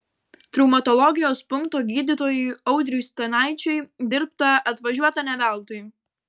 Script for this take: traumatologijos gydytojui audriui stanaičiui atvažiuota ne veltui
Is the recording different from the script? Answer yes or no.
yes